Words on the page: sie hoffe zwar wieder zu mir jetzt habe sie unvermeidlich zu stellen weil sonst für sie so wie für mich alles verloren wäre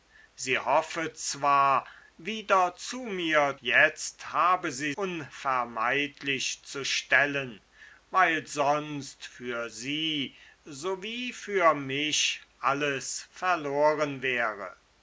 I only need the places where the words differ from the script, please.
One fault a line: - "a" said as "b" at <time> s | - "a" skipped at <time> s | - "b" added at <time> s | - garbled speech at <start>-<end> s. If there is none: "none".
none